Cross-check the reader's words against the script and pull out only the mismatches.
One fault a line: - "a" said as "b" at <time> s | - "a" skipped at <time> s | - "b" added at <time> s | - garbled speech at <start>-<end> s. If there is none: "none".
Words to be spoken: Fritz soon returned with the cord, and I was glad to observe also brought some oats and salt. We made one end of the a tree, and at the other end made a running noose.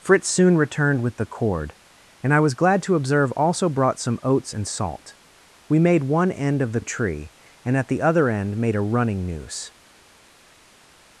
none